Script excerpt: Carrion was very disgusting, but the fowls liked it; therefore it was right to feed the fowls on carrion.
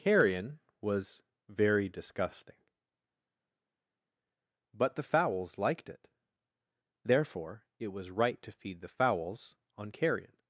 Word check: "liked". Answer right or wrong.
right